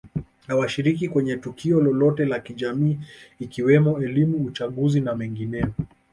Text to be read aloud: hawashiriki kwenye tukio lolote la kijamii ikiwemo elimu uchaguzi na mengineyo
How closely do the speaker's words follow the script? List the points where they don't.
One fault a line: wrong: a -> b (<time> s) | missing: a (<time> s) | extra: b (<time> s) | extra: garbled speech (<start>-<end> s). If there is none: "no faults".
no faults